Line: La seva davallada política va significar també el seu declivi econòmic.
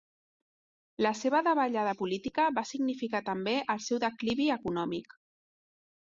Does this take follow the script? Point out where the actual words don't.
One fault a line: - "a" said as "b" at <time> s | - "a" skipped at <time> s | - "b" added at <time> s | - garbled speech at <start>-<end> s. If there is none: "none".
none